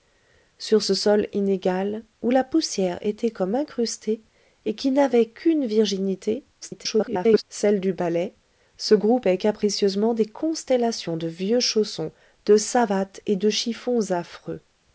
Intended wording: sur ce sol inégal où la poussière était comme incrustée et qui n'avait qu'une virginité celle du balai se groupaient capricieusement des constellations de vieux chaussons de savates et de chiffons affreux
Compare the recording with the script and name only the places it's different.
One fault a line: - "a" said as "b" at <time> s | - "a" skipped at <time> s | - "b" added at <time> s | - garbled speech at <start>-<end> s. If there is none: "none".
- garbled speech at 6.6-7.4 s